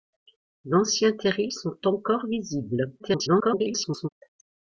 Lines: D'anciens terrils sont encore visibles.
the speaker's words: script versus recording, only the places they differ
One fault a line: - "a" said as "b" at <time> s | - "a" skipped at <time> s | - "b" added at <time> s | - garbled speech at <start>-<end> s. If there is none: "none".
- garbled speech at 3.0-4.1 s